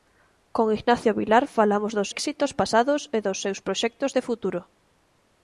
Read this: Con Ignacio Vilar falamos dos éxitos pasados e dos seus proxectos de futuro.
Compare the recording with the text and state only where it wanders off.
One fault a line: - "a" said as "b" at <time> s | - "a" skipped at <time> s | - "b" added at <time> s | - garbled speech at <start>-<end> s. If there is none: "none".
none